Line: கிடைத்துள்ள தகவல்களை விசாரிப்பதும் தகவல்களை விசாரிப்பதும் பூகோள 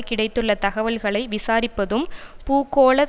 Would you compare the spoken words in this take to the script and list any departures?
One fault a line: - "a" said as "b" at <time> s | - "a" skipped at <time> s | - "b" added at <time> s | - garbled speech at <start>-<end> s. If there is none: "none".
- "தகவல்களை விசாரிப்பதும்" skipped at 2.0 s